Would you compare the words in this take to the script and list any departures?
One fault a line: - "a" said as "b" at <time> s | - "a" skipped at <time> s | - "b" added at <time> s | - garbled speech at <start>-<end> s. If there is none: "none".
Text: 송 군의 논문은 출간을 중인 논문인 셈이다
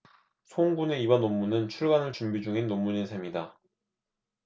- "이번" added at 1.0 s
- "준비" added at 2.1 s